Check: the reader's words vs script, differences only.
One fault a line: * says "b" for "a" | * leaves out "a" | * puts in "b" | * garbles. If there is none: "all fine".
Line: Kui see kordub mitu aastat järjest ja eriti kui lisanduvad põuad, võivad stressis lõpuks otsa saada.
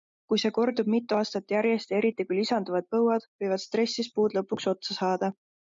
* puts in "puud"